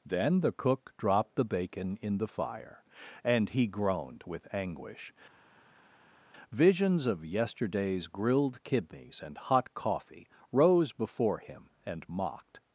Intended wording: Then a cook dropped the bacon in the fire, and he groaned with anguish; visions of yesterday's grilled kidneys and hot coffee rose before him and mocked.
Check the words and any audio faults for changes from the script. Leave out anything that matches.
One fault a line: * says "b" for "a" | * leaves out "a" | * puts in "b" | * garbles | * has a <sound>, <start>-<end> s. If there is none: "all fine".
* says "the" for "a"